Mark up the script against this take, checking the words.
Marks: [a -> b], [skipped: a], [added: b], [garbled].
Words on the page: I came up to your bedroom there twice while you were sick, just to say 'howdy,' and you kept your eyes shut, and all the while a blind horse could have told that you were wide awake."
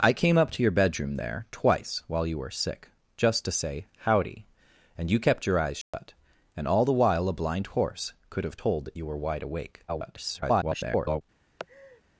I came up to your bedroom there twice while you were sick, just to say 'howdy,' and you kept your eyes shut, and all the while a blind horse could have told that you were wide awake." [garbled]